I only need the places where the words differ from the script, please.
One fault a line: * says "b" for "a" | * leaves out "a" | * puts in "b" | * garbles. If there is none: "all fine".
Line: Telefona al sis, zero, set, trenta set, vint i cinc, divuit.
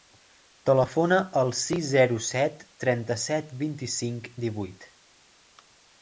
all fine